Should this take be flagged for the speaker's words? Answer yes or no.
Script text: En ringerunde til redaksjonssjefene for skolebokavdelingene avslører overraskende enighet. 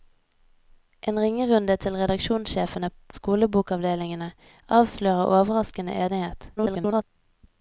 yes